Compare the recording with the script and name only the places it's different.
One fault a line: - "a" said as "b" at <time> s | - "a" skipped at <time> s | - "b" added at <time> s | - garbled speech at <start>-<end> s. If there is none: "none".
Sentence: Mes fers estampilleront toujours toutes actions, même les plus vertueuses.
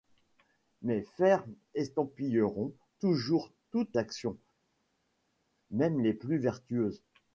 none